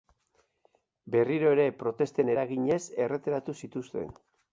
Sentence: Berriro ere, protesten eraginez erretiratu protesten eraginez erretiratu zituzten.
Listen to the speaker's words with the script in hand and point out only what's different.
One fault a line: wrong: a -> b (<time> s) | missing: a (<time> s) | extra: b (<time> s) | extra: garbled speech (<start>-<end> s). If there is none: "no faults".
missing: protesten eraginez erretiratu (3.6 s)